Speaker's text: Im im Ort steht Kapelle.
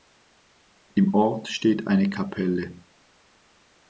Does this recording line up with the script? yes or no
no